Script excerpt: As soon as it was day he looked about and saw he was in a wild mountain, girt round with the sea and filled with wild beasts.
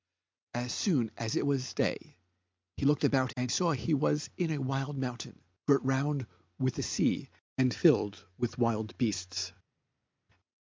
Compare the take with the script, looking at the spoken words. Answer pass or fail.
pass